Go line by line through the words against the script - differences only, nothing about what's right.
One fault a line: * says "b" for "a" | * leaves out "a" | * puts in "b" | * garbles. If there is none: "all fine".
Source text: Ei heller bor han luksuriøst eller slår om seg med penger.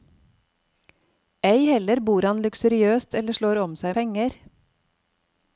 * leaves out "med"